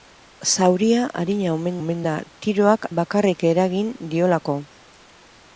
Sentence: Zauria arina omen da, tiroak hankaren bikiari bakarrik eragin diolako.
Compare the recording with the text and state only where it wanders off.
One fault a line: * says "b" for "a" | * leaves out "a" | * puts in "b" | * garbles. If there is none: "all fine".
* puts in "omen"
* leaves out "hankaren bikiari"